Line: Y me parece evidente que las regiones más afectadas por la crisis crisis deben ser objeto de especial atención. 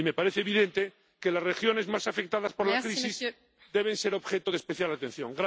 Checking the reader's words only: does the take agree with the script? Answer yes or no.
no